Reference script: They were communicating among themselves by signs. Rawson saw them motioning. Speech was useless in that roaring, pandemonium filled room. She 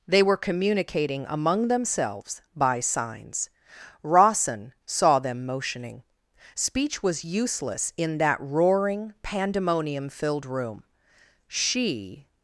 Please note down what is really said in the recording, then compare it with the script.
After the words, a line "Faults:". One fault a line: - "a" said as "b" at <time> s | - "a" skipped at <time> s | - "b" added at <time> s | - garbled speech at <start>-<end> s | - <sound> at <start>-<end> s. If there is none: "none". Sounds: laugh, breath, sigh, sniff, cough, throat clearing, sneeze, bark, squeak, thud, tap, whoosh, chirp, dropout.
They were communicating among themselves by signs. Rawson saw them motioning. Speech was useless in that roaring, pandemonium filled room. She
Faults:
none